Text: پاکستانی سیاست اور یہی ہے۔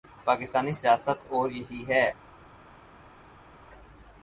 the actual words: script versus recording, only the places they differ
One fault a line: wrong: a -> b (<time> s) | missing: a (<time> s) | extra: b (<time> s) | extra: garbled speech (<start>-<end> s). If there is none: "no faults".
no faults